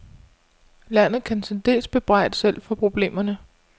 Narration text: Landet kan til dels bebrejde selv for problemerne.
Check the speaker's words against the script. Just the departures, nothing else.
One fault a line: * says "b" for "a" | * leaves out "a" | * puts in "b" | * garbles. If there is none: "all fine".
all fine